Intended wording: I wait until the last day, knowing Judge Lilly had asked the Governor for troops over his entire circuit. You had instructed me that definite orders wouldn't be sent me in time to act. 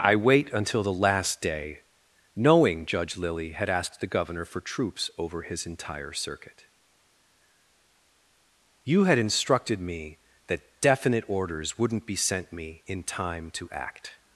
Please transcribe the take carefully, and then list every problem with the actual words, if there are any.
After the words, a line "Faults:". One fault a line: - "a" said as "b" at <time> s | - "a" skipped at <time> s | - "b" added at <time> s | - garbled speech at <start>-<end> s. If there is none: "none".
I wait until the last day, knowing Judge Lilly had asked the Governor for troops over his entire circuit. You had instructed me that definite orders wouldn't be sent me in time to act.
Faults:
none